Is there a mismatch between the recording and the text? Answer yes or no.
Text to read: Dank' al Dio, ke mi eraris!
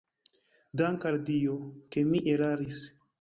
no